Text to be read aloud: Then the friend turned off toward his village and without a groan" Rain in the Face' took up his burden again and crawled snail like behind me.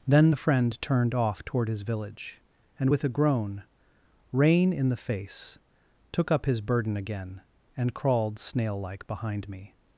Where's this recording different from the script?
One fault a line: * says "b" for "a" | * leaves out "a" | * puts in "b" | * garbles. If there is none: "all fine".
* says "with" for "without"